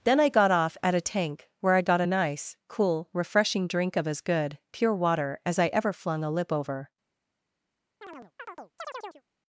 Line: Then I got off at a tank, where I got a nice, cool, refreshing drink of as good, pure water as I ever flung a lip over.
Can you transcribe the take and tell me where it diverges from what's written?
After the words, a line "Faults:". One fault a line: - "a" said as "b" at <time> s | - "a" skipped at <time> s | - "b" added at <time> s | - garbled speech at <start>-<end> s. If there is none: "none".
Then I got off at a tank, where I got a nice, cool, refreshing drink of as good, pure water as I ever flung a lip over.
Faults:
none